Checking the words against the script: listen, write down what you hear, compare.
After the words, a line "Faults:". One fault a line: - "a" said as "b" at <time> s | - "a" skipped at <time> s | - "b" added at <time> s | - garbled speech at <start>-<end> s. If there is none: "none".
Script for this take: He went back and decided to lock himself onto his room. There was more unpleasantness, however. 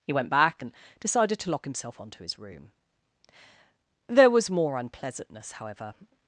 He went back and decided to lock himself onto his room. There was more unpleasantness, however.
Faults:
none